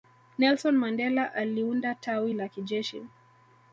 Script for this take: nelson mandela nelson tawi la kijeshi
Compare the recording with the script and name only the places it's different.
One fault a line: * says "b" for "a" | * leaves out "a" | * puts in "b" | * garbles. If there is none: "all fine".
* says "aliunda" for "nelson"